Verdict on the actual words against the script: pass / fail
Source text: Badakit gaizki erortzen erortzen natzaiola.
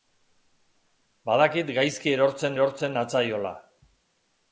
pass